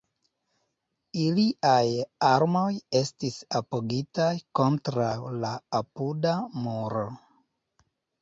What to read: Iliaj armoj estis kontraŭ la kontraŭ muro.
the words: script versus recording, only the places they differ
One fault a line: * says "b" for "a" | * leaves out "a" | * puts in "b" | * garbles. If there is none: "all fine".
* puts in "apogitaj"
* says "apuda" for "kontraŭ"